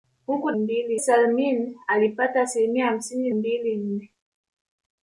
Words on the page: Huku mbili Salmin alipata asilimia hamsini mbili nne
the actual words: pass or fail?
pass